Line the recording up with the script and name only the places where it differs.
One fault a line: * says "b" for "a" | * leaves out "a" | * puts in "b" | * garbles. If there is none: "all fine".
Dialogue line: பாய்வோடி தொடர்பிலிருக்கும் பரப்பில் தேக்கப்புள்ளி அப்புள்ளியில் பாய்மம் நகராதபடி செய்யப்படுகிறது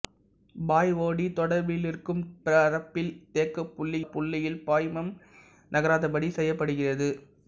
all fine